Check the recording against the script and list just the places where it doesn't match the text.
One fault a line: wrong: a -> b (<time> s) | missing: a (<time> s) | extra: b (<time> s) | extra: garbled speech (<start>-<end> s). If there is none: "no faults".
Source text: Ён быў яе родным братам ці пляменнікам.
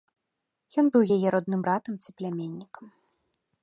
no faults